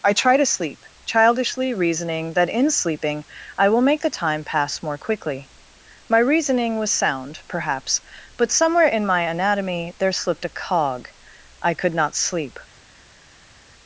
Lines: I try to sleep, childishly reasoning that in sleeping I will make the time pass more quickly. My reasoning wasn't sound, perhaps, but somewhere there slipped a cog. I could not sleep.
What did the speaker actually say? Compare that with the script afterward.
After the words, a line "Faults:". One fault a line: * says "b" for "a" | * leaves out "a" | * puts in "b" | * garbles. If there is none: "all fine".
I try to sleep, childishly reasoning that in sleeping I will make the time pass more quickly. My reasoning was sound, perhaps, but somewhere in my anatomy there slipped a cog. I could not sleep.
Faults:
* says "was" for "wasn't"
* puts in "in my anatomy"